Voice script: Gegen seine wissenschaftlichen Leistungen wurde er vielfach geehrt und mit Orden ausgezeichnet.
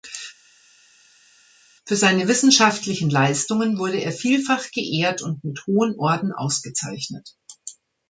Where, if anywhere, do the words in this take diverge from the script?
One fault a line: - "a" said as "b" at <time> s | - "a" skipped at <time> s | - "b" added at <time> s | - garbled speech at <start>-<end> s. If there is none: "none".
- "Gegen" said as "Für" at 1.9 s
- "hohen" added at 5.7 s